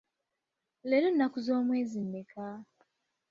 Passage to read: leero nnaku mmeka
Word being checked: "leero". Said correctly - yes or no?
yes